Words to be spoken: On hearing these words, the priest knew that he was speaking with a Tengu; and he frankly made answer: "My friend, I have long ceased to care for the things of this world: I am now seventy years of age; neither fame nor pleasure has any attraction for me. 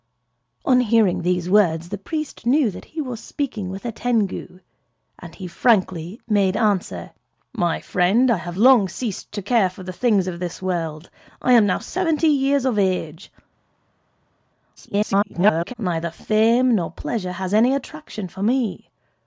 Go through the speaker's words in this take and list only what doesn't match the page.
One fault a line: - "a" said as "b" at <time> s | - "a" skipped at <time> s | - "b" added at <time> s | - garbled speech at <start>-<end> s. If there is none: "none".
- garbled speech at 14.8-15.7 s